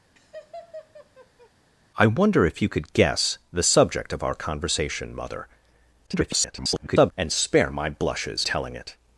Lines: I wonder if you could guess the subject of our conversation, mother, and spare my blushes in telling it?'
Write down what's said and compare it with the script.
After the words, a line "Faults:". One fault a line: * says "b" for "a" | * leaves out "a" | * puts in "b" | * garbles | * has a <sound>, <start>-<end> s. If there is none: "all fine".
I wonder if you could guess the subject of our conversation, mother, [garbled] and spare my blushes telling it?'
Faults:
* has a laugh, 0.2-1.5 s
* garbles
* leaves out "in"